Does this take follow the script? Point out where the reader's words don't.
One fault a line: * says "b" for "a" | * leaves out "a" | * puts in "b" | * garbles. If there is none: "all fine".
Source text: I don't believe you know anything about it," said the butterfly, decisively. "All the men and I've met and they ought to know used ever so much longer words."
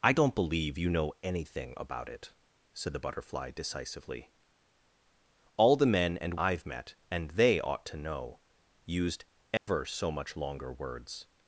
all fine